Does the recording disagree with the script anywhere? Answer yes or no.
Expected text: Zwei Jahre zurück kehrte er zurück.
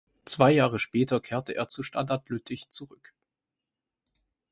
yes